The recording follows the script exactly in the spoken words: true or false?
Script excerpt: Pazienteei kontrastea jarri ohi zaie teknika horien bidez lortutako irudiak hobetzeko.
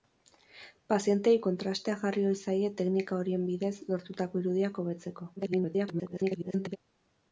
false